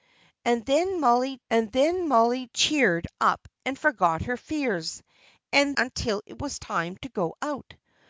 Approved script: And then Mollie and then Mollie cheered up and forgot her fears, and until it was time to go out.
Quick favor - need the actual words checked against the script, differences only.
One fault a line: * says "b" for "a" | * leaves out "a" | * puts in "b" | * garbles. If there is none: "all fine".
all fine